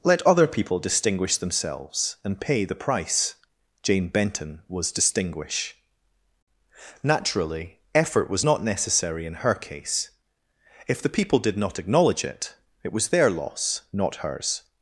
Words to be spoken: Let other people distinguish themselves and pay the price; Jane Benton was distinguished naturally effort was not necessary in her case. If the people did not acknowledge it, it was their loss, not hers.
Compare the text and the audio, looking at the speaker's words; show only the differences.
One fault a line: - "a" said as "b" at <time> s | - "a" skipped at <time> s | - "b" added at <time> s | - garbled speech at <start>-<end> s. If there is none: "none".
- "distinguished" said as "distinguish" at 4.9 s